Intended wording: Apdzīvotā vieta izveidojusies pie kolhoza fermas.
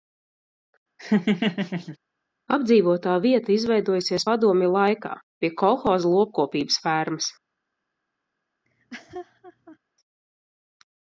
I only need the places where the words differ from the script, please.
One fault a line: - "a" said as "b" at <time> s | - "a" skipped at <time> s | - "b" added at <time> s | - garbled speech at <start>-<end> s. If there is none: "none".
- "padomju laikā" added at 4.2 s
- "lopkopības" added at 6.2 s